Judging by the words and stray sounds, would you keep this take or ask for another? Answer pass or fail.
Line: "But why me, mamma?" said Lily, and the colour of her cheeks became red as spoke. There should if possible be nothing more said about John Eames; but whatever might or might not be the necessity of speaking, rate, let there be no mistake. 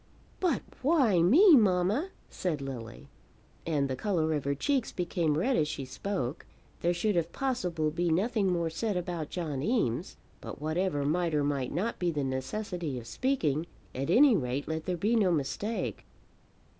fail